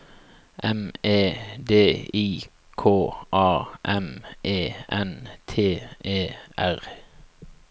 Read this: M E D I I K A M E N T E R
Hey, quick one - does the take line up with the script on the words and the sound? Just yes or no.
no